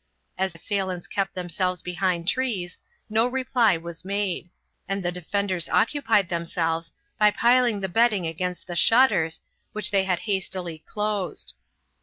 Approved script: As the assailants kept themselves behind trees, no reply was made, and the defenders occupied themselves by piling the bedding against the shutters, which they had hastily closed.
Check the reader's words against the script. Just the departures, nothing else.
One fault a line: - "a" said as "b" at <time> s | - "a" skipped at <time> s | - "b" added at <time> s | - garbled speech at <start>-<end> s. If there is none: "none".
- "the" skipped at 0.6 s